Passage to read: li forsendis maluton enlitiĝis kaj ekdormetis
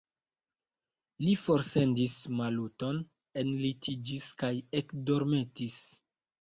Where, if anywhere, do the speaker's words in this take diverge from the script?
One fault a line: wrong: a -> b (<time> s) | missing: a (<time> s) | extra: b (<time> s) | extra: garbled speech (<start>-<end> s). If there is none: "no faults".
no faults